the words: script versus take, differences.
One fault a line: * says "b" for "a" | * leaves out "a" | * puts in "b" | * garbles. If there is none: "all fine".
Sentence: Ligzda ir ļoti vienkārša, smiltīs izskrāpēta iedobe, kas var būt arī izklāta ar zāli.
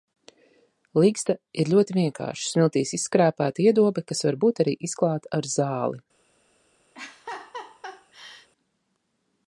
all fine